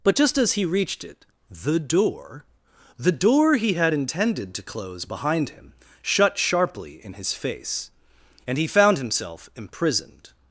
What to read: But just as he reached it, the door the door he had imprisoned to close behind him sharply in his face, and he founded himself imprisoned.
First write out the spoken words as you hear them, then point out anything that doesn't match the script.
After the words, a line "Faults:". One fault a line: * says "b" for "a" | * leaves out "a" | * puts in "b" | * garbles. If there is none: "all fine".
But just as he reached it, the door the door he had intended to close behind him shut sharply in his face, and he found himself imprisoned.
Faults:
* says "intended" for "imprisoned"
* puts in "shut"
* says "found" for "founded"